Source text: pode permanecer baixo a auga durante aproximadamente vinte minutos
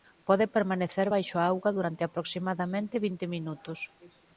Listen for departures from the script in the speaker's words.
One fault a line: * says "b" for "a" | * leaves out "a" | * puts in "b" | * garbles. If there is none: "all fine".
all fine